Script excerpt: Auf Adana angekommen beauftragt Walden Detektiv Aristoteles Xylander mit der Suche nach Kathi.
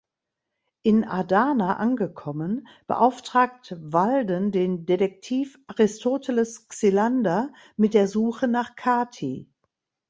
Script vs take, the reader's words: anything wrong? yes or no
yes